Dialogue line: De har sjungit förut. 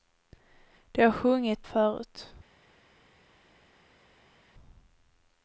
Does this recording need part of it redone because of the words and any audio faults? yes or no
no